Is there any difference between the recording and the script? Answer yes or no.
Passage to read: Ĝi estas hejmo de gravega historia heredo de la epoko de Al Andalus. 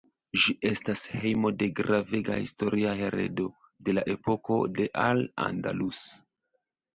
no